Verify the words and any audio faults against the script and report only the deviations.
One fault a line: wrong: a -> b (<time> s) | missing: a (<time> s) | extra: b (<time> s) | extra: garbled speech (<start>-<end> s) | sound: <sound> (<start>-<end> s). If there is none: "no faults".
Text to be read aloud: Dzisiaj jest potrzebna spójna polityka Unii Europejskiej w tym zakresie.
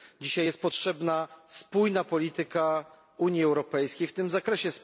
no faults